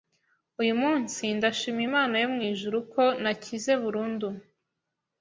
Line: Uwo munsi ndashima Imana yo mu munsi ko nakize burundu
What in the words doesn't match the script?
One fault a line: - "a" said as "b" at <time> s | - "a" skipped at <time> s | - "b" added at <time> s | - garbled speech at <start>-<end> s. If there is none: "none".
- "Uwo" said as "Uyu" at 0.6 s
- "munsi" said as "ijuru" at 2.5 s